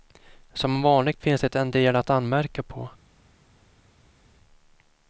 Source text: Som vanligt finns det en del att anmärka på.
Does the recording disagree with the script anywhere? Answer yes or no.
no